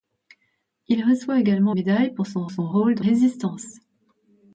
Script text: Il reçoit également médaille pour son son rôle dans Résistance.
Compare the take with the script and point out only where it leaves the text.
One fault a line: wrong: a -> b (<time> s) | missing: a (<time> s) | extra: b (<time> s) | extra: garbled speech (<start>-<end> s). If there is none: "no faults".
no faults